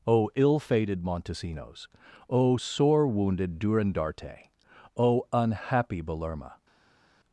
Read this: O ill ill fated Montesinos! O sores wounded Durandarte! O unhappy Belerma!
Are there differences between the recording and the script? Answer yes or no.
yes